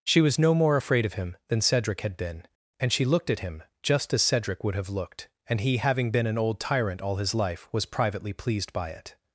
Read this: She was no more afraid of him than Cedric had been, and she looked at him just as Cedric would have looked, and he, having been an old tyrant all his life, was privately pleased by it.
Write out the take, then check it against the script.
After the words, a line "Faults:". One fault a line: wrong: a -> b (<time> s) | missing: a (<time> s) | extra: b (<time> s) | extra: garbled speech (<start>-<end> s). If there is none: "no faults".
She was no more afraid of him than Cedric had been, and she looked at him just as Cedric would have looked, and he, having been an old tyrant all his life, was privately pleased by it.
Faults:
no faults